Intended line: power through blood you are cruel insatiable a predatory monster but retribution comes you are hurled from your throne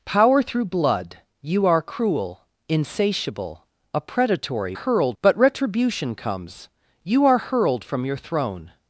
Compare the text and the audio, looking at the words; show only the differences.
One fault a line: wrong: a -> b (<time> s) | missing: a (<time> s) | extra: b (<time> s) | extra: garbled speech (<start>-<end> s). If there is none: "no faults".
wrong: monster -> hurled (4.7 s)